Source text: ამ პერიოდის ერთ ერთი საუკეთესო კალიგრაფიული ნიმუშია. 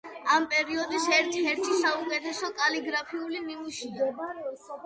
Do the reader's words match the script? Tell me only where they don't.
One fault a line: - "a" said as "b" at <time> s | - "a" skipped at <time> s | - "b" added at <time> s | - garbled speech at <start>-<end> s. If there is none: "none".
none